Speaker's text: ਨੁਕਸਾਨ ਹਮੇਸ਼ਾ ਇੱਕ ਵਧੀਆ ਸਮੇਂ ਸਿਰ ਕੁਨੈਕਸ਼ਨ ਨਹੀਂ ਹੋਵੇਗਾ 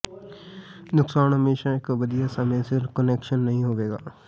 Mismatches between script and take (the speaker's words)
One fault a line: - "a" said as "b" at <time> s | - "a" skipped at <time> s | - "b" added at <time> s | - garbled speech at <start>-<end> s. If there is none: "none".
none